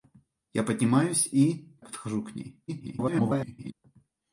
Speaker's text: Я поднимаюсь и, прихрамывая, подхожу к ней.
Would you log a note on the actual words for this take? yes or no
yes